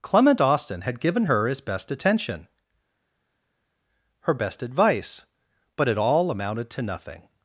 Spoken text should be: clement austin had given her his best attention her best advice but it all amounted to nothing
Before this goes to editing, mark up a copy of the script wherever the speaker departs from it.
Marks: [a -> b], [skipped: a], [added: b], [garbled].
clement austin had given her his best attention her best advice but it all amounted to nothing